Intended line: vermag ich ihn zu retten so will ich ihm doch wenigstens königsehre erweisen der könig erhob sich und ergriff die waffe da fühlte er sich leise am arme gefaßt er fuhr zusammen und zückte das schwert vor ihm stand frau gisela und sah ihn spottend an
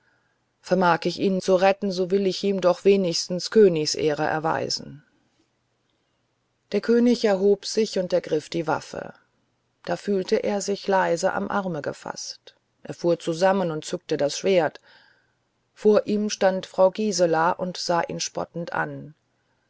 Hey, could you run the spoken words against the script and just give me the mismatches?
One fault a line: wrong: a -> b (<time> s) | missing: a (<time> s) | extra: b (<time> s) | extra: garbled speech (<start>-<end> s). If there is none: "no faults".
no faults